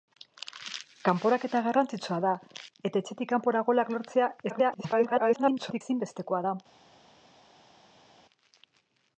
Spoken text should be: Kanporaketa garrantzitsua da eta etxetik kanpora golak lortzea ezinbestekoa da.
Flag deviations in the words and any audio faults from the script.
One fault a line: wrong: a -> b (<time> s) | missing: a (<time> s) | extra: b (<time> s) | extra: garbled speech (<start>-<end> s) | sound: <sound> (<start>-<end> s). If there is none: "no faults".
extra: garbled speech (4.5-5.8 s)